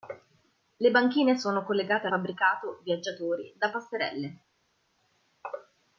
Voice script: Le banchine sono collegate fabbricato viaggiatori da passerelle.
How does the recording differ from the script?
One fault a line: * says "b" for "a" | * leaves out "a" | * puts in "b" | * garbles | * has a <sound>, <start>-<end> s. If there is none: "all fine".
all fine